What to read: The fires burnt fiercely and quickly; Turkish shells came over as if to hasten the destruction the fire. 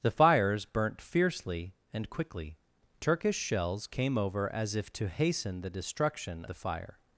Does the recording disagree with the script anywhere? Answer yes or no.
no